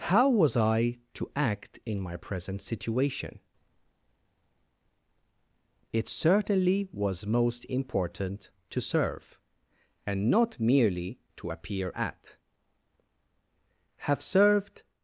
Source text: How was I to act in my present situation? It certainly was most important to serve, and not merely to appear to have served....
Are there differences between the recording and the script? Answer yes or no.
yes